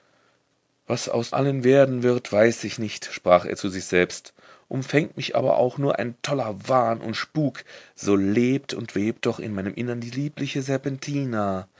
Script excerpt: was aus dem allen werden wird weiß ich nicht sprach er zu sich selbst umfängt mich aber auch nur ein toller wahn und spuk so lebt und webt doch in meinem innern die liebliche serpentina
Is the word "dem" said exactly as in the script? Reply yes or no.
no